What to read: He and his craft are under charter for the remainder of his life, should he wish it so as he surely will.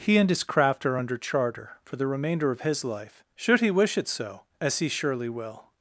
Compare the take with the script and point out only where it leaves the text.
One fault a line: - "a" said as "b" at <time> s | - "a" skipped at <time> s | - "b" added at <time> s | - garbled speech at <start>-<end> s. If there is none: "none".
none